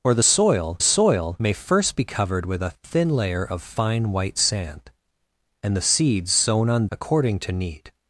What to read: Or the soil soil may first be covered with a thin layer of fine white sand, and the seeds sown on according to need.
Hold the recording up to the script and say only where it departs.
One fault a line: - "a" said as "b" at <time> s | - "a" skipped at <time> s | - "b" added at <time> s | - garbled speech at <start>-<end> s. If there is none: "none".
none